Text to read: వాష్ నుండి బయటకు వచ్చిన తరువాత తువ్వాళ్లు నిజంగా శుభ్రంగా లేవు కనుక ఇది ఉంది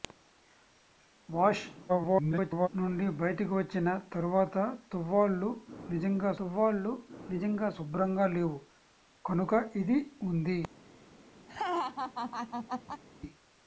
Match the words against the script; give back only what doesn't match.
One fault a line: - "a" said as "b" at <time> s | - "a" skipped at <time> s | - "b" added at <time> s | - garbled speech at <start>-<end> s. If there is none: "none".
- garbled speech at 1.9-2.7 s
- "తువ్వాళ్లు నిజంగా" added at 6.4 s